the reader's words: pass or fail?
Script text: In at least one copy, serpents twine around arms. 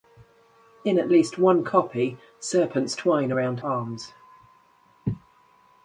pass